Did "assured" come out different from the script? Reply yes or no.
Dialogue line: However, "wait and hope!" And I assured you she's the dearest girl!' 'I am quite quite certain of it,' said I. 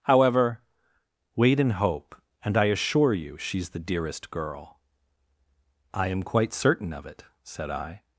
yes